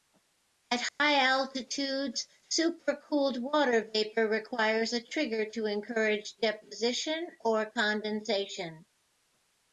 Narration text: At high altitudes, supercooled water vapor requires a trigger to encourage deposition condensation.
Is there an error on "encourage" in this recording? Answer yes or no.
no